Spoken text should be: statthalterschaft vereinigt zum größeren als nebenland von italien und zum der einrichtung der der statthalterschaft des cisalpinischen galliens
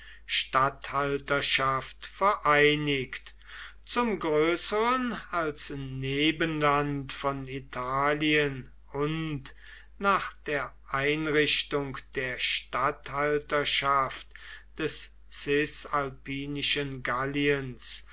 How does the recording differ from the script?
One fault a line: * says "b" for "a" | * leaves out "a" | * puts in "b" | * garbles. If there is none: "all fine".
* says "nach" for "zum"
* leaves out "der"